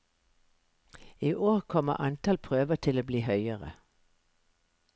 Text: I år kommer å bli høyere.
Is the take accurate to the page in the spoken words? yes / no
no